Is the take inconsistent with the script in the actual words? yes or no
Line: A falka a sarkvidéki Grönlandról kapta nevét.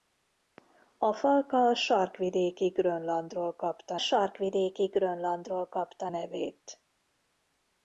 yes